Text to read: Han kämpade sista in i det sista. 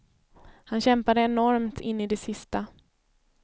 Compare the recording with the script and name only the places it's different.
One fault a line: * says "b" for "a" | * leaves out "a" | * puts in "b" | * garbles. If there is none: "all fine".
* says "enormt" for "sista"